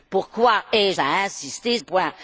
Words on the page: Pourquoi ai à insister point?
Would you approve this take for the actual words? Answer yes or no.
yes